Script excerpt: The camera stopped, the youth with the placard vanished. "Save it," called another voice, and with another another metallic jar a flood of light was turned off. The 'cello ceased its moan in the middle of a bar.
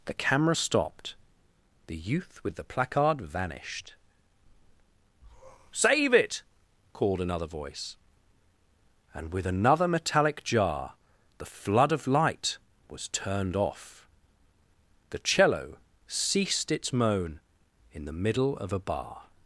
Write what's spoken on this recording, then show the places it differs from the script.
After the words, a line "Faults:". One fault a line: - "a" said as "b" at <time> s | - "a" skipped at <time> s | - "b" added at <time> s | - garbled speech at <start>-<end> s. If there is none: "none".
The camera stopped, the youth with the placard vanished. "Save it," called another voice, and with another metallic jar the flood of light was turned off. The 'cello ceased its moan in the middle of a bar.
Faults:
- "another" skipped at 9.9 s
- "a" said as "the" at 11.4 s